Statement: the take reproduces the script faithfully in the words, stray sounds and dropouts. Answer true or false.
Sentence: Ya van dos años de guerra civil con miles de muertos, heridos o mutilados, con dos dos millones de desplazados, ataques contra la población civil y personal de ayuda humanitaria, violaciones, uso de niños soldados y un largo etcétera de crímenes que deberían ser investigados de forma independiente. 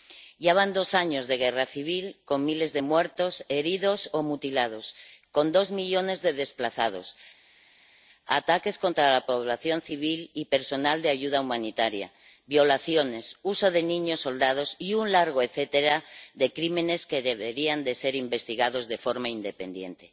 false